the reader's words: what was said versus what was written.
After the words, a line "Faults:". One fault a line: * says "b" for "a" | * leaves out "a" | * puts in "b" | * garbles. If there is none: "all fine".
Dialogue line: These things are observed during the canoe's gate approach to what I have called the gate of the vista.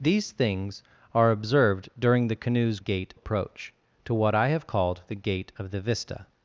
These things are observed during the canoe's gate approach to what I have called the gate of the vista.
Faults:
all fine